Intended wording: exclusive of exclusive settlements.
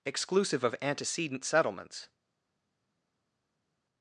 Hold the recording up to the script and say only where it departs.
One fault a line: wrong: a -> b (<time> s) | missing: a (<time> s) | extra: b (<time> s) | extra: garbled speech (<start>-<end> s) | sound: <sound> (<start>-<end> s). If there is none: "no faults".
wrong: exclusive -> antecedent (0.8 s)